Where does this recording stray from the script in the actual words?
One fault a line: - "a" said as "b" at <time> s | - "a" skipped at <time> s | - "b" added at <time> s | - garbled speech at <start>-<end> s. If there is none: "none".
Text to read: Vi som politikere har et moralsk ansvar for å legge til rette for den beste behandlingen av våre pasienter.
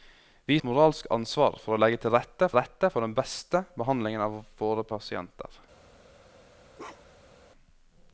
- "som politikere har" skipped at 0.6 s
- "rette" added at 2.6 s